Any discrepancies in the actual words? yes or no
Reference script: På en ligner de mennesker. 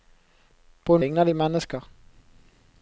no